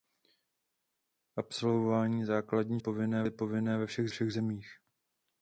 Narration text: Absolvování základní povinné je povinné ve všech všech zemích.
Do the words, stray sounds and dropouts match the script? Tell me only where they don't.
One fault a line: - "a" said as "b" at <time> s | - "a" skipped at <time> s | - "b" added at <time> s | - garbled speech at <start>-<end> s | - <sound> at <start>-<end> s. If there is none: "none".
none